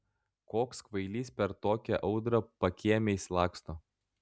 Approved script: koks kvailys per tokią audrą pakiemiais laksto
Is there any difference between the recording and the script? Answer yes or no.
no